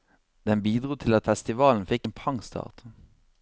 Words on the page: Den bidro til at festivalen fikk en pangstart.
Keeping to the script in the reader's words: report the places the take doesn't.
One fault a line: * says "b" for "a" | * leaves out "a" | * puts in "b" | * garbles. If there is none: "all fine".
all fine